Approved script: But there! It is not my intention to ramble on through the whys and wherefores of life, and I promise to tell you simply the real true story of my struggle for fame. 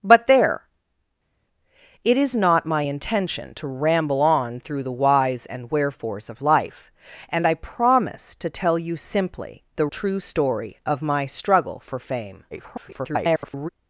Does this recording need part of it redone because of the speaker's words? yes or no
yes